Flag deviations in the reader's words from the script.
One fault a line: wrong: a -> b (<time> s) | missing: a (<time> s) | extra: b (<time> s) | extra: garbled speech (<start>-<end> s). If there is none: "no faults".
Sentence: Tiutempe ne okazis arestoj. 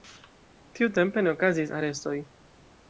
no faults